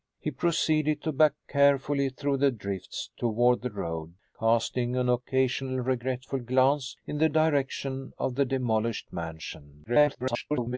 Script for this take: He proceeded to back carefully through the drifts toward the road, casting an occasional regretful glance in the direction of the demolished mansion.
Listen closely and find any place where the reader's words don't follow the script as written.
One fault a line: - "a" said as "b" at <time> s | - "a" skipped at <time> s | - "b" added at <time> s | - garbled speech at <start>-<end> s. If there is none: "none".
- garbled speech at 9.9-10.8 s